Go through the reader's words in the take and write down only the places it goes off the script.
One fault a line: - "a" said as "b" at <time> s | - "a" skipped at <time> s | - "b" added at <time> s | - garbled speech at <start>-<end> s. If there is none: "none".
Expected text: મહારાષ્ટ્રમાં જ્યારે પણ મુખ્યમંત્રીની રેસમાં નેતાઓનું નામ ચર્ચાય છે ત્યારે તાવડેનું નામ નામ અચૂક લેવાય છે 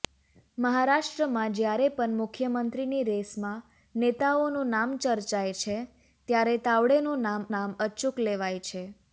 none